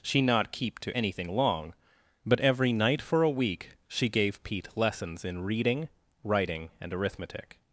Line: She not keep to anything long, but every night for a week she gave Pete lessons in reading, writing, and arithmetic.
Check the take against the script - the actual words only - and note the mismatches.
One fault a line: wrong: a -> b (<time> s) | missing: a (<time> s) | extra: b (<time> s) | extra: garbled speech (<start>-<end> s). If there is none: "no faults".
no faults